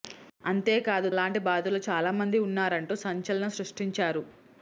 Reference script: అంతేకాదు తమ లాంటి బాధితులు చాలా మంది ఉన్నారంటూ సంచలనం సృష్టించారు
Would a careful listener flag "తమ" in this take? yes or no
yes